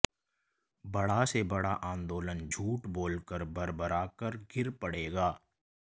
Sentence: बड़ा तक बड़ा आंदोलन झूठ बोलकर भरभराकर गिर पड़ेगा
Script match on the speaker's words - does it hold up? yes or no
no